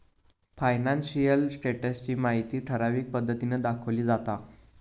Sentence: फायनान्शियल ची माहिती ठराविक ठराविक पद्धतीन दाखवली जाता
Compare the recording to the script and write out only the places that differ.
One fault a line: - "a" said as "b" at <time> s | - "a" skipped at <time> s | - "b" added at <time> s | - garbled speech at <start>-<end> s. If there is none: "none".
- "स्टेटस" added at 1.5 s
- "ठराविक" skipped at 3.1 s